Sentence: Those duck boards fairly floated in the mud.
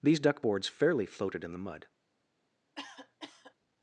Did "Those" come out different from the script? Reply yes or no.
yes